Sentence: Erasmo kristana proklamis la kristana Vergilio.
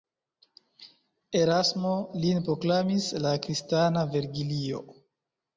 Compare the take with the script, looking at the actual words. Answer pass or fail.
fail